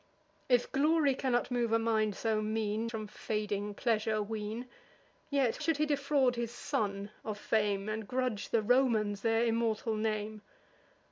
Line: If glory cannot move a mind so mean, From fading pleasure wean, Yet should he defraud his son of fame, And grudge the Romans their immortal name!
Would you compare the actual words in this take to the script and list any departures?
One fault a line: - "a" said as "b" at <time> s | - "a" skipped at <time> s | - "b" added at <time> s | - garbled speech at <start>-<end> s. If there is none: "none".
none